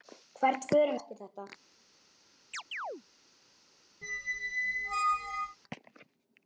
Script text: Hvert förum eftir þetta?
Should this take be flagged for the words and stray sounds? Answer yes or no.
yes